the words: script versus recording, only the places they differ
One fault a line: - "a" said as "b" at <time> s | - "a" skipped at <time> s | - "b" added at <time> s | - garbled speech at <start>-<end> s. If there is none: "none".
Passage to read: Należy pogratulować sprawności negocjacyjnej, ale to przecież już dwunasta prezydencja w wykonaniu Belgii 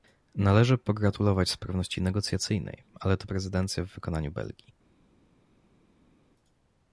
- "przecież już dwunasta" skipped at 3.3 s